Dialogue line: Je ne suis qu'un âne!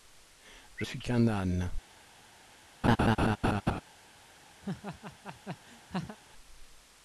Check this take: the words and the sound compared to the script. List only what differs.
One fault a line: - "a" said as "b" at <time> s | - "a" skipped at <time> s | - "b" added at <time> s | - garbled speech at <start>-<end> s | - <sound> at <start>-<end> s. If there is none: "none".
- "ne" skipped at 0.9 s
- laugh at 2.8-3.8 s
- laugh at 4.6-6.2 s